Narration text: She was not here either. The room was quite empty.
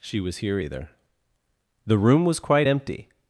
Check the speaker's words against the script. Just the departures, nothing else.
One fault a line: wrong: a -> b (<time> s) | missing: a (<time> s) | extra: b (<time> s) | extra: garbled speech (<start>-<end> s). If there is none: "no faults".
missing: not (0.4 s)